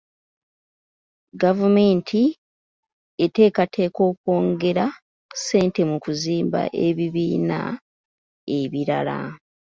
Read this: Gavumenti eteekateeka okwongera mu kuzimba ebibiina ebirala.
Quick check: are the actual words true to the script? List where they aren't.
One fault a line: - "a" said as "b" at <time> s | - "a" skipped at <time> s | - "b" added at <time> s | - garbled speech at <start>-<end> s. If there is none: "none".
- "ssente" added at 5.4 s